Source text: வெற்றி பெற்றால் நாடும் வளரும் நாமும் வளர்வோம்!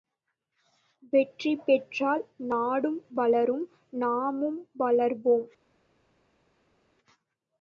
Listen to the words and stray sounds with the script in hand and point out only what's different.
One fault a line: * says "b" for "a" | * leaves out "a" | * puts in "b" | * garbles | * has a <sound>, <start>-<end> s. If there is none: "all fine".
all fine